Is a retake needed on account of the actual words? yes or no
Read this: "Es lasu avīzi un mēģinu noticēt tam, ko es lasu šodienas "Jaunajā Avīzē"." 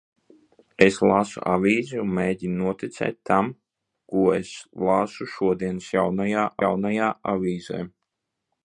yes